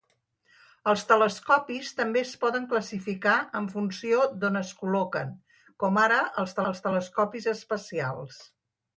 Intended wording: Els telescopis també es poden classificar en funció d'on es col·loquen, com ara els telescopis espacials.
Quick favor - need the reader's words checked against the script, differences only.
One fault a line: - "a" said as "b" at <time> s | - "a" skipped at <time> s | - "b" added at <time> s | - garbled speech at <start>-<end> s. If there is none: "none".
- "els" added at 6.7 s